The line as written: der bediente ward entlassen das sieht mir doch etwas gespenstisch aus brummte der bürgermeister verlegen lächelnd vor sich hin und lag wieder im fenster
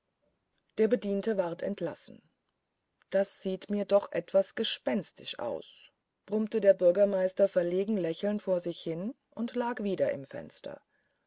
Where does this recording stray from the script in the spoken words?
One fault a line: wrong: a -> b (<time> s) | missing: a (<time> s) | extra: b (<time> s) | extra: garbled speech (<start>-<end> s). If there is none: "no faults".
no faults